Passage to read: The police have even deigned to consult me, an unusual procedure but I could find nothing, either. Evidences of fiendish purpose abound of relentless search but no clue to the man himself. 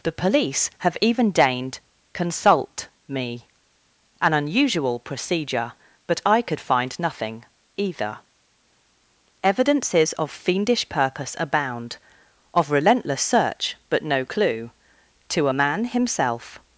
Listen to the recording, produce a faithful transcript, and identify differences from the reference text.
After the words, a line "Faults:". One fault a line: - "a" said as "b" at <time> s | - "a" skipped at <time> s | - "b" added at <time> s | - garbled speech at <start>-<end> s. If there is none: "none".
The police have even deigned consult me, an unusual procedure but I could find nothing, either. Evidences of fiendish purpose abound of relentless search but no clue to a man himself.
Faults:
- "to" skipped at 1.8 s
- "the" said as "a" at 15.5 s